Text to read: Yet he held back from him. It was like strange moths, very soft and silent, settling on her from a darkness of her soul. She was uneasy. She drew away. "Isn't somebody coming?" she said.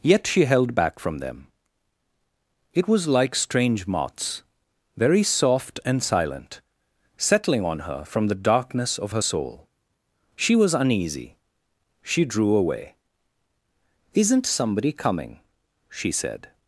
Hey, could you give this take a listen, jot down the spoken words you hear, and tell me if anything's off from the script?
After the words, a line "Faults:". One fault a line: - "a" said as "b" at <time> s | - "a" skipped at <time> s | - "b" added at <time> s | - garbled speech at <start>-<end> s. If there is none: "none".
Yet she held back from them. It was like strange moths, very soft and silent, settling on her from the darkness of her soul. She was uneasy. She drew away. "Isn't somebody coming?" she said.
Faults:
- "he" said as "she" at 0.2 s
- "him" said as "them" at 1.2 s
- "a" said as "the" at 8.3 s